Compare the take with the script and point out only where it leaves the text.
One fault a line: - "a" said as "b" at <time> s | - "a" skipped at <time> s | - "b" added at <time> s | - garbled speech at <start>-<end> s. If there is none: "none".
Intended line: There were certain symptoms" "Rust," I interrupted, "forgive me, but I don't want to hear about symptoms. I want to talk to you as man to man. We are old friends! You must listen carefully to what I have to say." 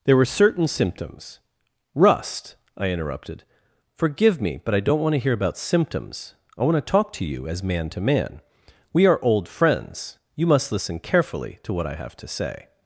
none